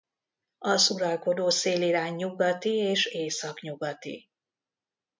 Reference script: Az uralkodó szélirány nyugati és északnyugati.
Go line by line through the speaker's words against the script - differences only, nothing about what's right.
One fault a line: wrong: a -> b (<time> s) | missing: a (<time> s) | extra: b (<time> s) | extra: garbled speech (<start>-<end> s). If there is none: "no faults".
no faults